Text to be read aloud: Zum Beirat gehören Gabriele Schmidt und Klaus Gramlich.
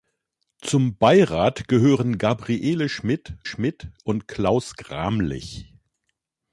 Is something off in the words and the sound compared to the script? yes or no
yes